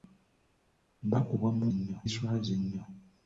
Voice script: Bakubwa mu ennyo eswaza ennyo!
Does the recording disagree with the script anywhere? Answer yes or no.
no